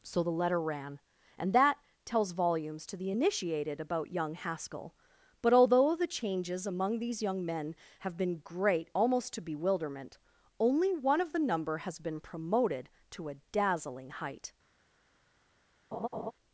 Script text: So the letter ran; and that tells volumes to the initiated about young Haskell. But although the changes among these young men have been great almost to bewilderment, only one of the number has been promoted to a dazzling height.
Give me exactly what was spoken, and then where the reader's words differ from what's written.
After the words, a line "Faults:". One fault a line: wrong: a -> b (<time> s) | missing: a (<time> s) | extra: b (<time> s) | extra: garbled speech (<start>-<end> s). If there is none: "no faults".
So the letter ran; and that tells volumes to the initiated about young Haskell. But although the changes among these young men have been great almost to bewilderment, only one of the number has been promoted to a dazzling height.
Faults:
no faults